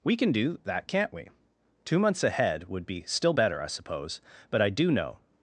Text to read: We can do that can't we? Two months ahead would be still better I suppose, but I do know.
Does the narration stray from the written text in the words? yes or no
no